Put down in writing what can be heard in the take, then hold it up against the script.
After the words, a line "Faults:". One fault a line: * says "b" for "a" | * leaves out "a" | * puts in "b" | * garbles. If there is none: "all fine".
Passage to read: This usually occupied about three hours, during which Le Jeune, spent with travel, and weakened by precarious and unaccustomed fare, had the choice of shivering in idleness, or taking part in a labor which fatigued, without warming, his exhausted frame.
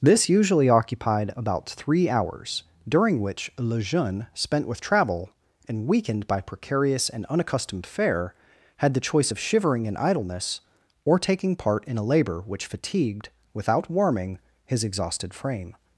This usually occupied about three hours, during which Le Jeune, spent with travel, and weakened by precarious and unaccustomed fare, had the choice of shivering in idleness, or taking part in a labor which fatigued, without warming, his exhausted frame.
Faults:
all fine